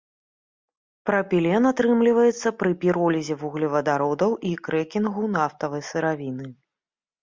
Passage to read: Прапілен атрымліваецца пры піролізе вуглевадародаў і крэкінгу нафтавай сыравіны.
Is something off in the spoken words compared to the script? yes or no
no